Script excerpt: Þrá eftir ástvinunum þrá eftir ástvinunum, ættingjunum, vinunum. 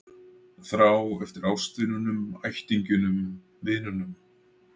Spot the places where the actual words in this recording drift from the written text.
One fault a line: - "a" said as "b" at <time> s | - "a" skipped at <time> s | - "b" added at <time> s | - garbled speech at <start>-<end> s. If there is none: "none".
- "þrá eftir ástvinunum" skipped at 2.2 s